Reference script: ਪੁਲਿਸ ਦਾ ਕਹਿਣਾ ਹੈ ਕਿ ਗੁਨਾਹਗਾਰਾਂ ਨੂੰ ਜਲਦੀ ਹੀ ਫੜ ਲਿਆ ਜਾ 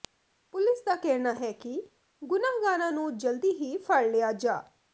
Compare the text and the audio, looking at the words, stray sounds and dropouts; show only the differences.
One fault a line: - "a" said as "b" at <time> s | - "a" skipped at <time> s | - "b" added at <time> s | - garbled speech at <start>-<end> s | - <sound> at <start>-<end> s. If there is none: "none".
none